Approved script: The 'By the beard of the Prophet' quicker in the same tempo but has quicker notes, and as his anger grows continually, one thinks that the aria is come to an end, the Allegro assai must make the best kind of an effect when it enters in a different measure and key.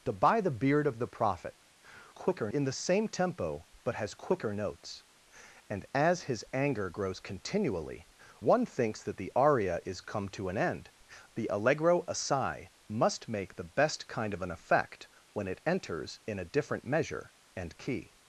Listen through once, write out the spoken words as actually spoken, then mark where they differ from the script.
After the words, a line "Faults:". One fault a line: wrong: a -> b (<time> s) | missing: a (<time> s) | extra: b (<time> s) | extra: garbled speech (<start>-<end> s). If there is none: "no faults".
The 'By the beard of the Prophet' quicker in the same tempo but has quicker notes, and as his anger grows continually, one thinks that the aria is come to an end, the Allegro assai must make the best kind of an effect when it enters in a different measure and key.
Faults:
no faults